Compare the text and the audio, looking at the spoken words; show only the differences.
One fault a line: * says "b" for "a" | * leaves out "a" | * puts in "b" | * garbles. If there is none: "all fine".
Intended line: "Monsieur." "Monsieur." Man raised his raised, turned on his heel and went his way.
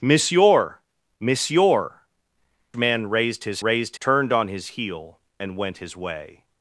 all fine